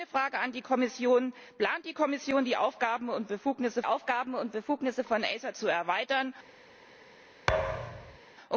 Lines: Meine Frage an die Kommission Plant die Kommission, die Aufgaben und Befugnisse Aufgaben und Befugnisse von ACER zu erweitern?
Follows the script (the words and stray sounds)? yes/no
no